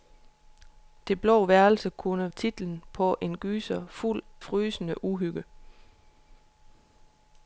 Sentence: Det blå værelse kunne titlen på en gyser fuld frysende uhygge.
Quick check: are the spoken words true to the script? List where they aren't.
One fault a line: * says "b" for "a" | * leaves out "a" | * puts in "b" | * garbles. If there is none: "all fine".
all fine